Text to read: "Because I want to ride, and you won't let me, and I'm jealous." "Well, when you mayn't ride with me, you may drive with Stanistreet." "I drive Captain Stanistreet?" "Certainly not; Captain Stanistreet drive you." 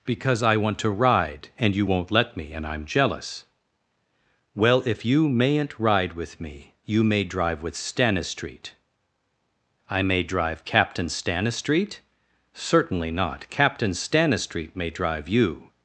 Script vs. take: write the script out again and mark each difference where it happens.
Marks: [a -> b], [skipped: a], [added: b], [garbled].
"Because I want to ride, and you won't let me, and I'm jealous." "Well, [when -> if] you mayn't ride with me, you may drive with Stanistreet." "I [added: may] drive Captain Stanistreet?" "Certainly not; Captain Stanistreet [added: may] drive you."